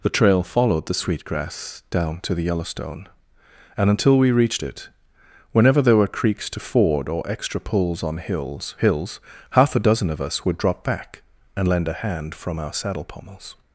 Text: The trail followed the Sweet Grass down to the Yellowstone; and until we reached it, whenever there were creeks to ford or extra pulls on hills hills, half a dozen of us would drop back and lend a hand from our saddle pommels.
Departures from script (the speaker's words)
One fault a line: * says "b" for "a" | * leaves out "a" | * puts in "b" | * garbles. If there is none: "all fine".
all fine